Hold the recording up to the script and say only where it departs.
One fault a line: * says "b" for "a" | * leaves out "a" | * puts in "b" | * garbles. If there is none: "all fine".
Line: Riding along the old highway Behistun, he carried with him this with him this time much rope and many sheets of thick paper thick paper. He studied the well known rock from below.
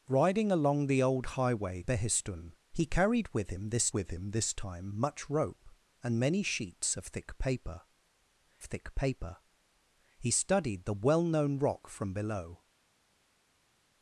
all fine